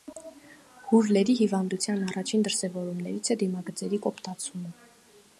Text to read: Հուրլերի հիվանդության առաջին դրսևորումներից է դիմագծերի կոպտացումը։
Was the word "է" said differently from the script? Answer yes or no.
no